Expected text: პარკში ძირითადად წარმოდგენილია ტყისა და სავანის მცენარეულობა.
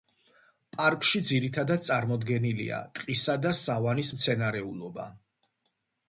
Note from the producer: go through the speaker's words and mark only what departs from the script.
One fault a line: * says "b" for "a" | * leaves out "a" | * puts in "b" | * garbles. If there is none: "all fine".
all fine